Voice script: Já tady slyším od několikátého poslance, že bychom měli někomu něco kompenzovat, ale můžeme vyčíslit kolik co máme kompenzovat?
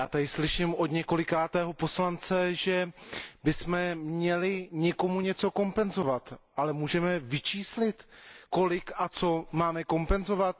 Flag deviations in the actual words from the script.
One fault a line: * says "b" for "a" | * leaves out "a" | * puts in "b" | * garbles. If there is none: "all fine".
* puts in "a"